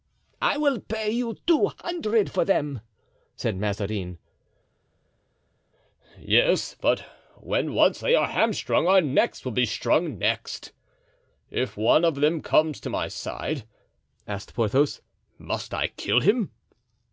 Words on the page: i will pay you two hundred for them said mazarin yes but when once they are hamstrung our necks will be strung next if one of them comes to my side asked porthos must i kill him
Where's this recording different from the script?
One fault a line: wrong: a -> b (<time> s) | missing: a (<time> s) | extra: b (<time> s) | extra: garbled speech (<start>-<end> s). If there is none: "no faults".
no faults